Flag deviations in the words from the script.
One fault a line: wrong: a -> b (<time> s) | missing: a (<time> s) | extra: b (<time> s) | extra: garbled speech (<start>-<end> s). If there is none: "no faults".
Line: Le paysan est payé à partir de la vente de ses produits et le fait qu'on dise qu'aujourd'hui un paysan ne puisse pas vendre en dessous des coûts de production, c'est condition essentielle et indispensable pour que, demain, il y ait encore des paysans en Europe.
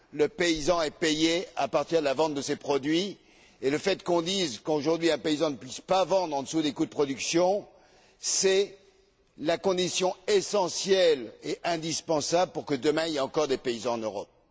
extra: la (9.4 s)